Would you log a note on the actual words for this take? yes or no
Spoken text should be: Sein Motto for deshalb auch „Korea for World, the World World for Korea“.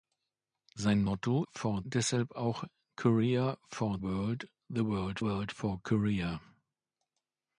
no